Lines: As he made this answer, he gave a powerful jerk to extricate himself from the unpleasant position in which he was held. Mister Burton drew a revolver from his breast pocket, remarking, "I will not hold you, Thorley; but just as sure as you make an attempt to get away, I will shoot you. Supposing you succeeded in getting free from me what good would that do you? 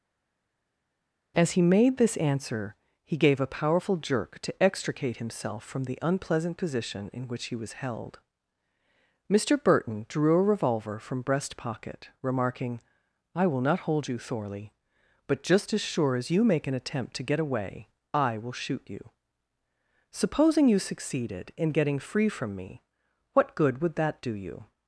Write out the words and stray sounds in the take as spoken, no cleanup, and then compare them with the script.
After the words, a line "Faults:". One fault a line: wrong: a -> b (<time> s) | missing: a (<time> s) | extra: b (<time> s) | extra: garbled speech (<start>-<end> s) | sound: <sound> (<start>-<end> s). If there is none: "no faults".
As he made this answer, he gave a powerful jerk to extricate himself from the unpleasant position in which he was held. Mister Burton drew a revolver from breast pocket, remarking, "I will not hold you, Thorley; but just as sure as you make an attempt to get away, I will shoot you. Supposing you succeeded in getting free from me what good would that do you?
Faults:
missing: his (11.2 s)